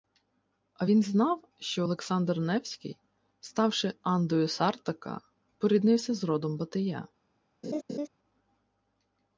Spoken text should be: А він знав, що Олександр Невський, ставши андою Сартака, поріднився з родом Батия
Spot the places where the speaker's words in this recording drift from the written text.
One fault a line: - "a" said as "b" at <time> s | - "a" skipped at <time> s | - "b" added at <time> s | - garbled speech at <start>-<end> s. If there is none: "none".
none